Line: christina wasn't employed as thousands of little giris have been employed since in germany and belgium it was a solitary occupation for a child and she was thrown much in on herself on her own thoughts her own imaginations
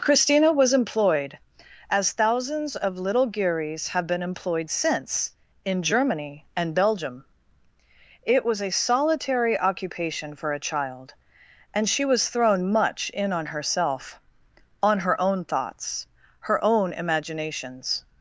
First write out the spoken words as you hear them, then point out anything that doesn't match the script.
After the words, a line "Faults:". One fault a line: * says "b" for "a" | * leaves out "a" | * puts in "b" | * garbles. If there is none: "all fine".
christina was employed as thousands of little giris have been employed since in germany and belgium it was a solitary occupation for a child and she was thrown much in on herself on her own thoughts her own imaginations
Faults:
* says "was" for "wasn't"